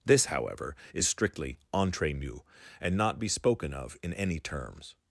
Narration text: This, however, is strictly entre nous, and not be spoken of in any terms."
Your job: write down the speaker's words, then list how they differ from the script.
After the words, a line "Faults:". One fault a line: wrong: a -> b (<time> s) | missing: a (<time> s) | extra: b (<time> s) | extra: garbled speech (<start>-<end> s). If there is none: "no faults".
This, however, is strictly entre nous, and not be spoken of in any terms."
Faults:
no faults